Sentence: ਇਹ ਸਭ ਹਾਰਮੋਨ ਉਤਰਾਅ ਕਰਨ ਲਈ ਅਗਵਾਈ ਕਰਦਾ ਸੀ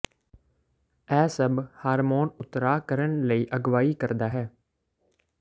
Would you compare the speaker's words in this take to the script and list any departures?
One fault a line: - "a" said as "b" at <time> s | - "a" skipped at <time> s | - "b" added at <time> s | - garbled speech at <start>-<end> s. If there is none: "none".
- "ਸੀ" said as "ਹੈ" at 4.3 s